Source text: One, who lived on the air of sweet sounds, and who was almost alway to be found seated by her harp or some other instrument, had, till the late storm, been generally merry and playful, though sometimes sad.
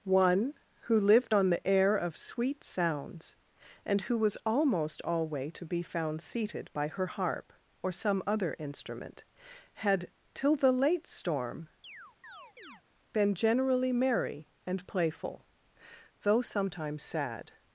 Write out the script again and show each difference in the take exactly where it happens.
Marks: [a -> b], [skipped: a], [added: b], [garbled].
One, who lived on the air of sweet sounds, and who was almost alway to be found seated by her harp or some other instrument, had, till the late storm, been generally merry and playful, though sometimes sad.